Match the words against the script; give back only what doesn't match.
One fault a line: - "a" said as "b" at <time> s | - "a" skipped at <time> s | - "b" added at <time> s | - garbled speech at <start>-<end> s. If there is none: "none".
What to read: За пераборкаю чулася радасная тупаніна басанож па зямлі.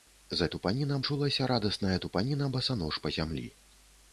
- "пераборкаю" said as "тупаніна" at 0.6 s